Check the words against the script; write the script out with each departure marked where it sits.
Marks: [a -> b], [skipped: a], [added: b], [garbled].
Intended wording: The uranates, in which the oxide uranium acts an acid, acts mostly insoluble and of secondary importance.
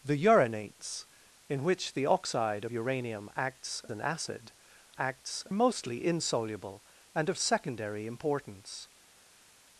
The uranates, in which the oxide uranium acts an acid, acts mostly insoluble and of secondary importance.